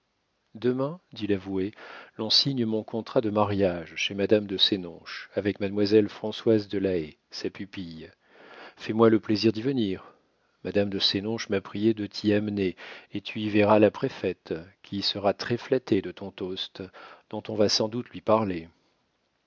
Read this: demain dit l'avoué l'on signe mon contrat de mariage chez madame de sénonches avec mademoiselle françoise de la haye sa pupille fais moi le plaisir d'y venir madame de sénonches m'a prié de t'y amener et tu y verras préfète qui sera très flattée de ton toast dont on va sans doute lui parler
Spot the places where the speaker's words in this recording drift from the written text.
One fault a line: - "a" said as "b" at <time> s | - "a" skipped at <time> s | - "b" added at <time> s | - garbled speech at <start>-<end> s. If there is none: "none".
- "la" added at 13.8 s